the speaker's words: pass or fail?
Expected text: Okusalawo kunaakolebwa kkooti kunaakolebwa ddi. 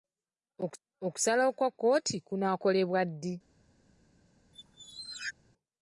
fail